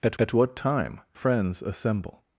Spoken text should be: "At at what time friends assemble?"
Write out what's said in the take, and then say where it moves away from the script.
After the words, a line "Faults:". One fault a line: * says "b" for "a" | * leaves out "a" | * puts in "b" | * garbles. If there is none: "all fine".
"At at what time friends assemble?"
Faults:
all fine